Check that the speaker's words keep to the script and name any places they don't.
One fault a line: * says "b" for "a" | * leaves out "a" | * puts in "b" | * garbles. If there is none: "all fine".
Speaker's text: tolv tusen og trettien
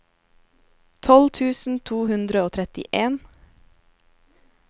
* puts in "to hundre"